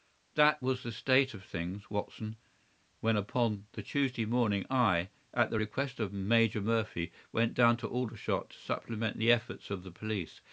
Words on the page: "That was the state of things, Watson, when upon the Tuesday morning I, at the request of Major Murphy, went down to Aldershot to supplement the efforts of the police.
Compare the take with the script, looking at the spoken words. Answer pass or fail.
pass